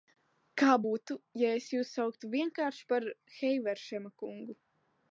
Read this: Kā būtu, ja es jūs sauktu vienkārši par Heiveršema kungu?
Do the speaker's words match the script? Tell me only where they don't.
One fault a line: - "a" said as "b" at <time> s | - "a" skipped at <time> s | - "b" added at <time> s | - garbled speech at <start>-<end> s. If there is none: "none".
none